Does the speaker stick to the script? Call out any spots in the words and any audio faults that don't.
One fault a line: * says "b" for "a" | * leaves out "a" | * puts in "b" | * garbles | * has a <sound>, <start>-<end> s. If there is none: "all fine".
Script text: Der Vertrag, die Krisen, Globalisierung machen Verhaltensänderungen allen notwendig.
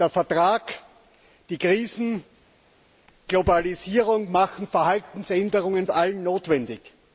all fine